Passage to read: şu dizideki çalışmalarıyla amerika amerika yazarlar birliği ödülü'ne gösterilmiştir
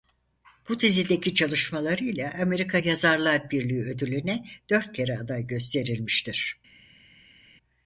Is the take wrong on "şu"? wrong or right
wrong